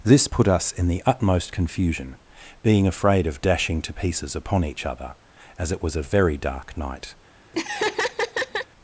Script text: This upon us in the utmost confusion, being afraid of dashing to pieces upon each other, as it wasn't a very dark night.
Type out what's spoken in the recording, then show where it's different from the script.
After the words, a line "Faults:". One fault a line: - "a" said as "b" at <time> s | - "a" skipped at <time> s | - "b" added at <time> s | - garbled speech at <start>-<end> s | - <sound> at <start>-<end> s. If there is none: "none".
This put us in the utmost confusion, being afraid of dashing to pieces upon each other, as it was a very dark night.
Faults:
- "upon" said as "put" at 0.3 s
- "wasn't" said as "was" at 5.8 s
- laugh at 7.5-8.7 s